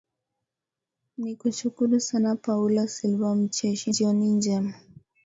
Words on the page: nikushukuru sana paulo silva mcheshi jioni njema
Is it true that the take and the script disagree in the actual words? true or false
false